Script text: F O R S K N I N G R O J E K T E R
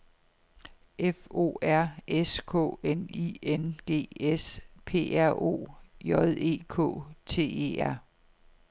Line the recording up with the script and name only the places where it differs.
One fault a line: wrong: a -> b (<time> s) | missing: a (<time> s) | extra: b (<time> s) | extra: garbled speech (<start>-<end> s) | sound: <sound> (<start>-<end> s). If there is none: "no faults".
extra: S P (4.2 s)